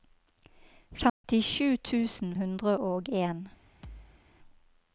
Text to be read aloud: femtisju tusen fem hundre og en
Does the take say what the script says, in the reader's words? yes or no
no